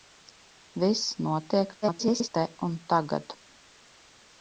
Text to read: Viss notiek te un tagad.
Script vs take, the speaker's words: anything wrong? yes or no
yes